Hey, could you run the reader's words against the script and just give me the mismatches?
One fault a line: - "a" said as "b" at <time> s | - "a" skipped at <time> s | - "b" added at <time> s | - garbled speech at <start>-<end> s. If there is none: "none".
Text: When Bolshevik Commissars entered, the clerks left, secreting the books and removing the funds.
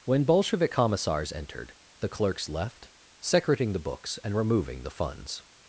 none